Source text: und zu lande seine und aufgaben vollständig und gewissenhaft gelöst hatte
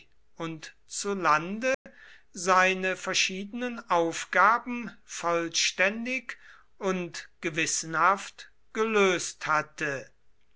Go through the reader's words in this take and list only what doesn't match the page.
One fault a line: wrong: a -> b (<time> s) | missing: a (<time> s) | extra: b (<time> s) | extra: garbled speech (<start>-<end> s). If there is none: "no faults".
wrong: und -> verschiedenen (3.0 s)